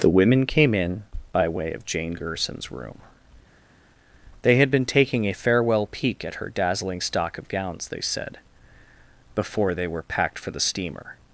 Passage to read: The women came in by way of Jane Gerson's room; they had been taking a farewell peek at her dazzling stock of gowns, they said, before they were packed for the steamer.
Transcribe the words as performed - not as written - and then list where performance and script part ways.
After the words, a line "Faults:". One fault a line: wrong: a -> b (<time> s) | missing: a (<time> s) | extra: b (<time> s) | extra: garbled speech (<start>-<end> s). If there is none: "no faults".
The women came in by way of Jane Gerson's room; they had been taking a farewell peek at her dazzling stock of gowns, they said, before they were packed for the steamer.
Faults:
no faults